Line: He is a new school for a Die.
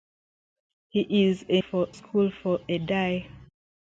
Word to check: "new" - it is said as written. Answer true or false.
false